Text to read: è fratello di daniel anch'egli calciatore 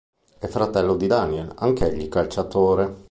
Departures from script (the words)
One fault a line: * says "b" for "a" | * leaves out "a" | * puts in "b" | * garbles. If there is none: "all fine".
all fine